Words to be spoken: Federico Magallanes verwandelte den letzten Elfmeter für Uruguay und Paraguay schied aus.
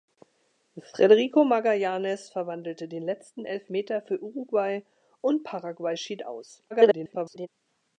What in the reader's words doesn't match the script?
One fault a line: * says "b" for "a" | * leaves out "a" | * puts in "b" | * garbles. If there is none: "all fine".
* garbles